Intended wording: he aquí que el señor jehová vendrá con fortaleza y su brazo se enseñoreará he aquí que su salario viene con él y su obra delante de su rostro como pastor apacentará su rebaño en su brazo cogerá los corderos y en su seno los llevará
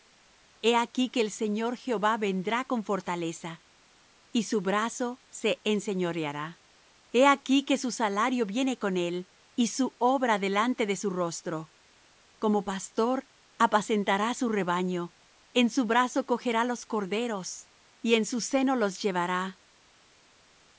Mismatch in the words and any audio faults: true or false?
false